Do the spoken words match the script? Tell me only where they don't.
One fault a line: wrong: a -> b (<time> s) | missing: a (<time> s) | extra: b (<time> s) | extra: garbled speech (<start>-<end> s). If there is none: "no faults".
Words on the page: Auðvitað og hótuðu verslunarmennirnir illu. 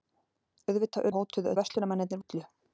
no faults